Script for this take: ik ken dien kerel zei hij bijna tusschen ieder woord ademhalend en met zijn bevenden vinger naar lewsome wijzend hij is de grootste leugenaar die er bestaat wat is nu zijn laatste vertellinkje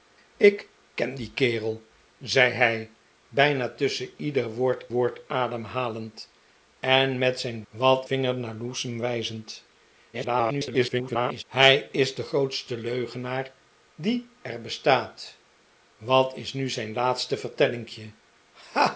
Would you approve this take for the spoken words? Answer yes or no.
no